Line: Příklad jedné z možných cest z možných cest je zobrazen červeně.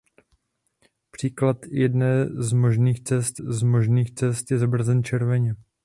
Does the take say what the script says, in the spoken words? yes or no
yes